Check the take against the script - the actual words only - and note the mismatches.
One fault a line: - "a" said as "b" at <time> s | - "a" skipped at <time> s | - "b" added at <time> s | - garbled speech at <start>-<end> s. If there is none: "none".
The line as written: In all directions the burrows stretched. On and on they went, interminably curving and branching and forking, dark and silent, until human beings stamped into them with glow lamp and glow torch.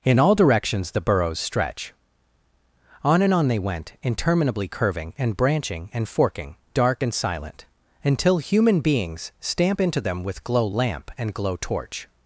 - "stretched" said as "stretch" at 1.4 s
- "stamped" said as "stamp" at 9.4 s